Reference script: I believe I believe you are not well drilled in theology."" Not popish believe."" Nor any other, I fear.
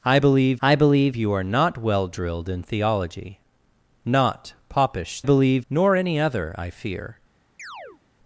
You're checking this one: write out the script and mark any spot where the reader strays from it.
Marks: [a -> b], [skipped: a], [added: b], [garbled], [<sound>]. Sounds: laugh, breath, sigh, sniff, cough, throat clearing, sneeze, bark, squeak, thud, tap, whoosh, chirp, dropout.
I believe I believe you are not well drilled in theology."" Not popish believe."" Nor any other, I fear. [chirp]